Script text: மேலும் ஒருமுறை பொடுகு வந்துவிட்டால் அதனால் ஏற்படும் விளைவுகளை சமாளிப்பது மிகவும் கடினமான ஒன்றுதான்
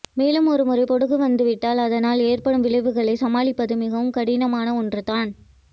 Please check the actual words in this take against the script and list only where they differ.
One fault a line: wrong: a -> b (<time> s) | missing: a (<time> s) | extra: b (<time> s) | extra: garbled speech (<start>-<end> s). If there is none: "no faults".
no faults